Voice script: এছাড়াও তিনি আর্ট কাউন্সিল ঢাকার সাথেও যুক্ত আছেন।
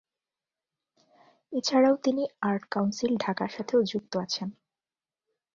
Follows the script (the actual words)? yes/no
yes